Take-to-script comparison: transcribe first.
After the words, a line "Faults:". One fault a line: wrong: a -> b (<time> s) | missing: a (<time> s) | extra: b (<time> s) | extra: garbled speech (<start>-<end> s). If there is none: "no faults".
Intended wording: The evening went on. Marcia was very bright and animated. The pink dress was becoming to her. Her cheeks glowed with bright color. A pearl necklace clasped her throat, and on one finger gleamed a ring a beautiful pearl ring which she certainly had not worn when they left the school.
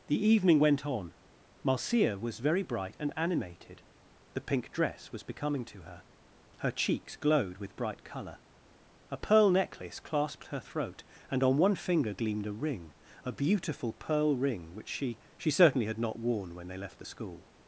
The evening went on. Marcia was very bright and animated. The pink dress was becoming to her. Her cheeks glowed with bright color. A pearl necklace clasped her throat, and on one finger gleamed a ring a beautiful pearl ring which she she certainly had not worn when they left the school.
Faults:
extra: she (15.4 s)